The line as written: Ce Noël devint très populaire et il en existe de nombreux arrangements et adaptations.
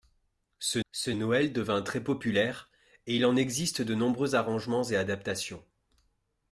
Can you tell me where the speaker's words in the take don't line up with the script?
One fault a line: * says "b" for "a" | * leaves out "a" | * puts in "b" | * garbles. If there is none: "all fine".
* puts in "ce"